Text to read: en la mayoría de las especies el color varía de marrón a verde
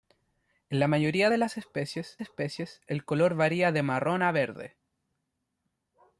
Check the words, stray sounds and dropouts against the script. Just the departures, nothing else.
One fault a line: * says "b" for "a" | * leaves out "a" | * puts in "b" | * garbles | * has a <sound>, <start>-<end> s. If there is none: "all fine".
* puts in "especies"